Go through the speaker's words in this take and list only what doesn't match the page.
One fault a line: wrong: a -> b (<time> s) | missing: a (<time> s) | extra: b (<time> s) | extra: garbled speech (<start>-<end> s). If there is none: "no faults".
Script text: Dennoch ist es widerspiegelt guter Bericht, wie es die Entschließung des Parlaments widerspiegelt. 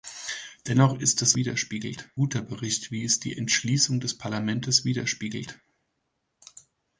no faults